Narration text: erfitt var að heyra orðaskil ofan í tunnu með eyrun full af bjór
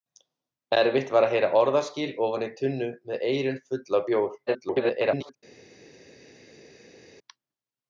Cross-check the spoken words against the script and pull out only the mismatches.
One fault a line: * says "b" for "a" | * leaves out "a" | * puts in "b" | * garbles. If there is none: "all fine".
* garbles